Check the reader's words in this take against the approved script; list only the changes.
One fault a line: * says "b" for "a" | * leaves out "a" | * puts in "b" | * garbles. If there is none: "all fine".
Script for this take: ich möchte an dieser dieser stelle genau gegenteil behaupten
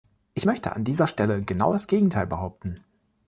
* leaves out "dieser"
* puts in "das"